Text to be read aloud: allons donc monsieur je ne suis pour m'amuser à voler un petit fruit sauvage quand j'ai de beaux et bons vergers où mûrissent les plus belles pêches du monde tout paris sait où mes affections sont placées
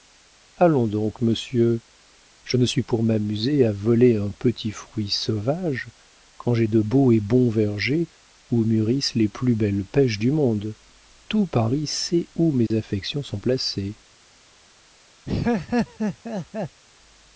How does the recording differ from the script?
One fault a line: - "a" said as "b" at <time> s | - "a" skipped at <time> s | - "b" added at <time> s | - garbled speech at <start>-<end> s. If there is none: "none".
none